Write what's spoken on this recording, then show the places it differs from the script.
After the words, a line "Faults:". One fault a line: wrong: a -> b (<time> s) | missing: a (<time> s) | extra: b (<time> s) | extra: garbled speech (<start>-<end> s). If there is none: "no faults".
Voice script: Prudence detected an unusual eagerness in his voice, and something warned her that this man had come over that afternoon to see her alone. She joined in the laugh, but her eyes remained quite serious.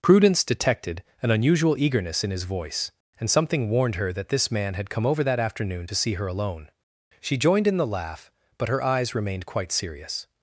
Prudence detected an unusual eagerness in his voice, and something warned her that this man had come over that afternoon to see her alone. She joined in the laugh, but her eyes remained quite serious.
Faults:
no faults